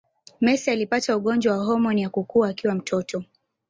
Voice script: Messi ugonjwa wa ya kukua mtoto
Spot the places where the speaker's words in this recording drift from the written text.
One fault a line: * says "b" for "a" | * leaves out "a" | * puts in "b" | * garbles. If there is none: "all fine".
* puts in "alipata"
* puts in "homoni"
* puts in "akiwa"